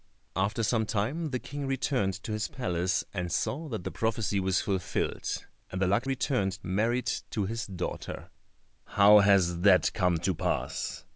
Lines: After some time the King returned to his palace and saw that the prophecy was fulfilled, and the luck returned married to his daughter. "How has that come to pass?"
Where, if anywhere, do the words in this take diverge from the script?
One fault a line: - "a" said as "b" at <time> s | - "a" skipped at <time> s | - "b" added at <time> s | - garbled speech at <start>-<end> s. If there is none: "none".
none